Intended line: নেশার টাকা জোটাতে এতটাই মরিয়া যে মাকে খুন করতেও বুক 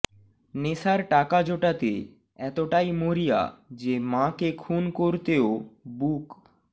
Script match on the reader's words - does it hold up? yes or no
yes